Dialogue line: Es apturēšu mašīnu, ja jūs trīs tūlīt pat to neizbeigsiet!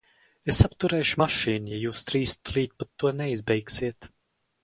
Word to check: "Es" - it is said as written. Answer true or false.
true